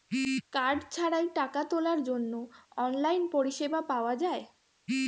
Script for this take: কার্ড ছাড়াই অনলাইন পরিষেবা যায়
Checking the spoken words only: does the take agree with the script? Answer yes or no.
no